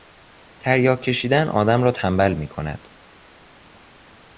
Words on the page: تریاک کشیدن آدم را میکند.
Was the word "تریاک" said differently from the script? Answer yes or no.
no